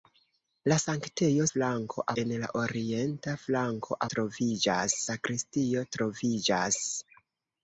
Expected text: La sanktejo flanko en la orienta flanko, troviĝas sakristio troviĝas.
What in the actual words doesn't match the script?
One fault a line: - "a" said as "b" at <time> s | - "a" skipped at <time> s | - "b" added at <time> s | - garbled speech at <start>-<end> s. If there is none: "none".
none